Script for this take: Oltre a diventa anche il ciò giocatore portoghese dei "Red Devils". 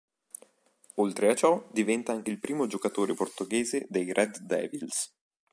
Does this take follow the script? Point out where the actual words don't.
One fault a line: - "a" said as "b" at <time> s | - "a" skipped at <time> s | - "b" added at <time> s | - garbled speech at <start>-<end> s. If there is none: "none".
- "ciò" added at 1.3 s
- "ciò" said as "primo" at 2.4 s